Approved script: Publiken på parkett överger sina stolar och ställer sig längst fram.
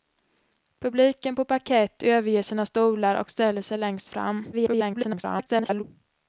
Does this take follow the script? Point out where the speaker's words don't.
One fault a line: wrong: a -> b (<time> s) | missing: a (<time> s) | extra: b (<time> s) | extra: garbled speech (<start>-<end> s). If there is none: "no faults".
extra: garbled speech (4.5-5.8 s)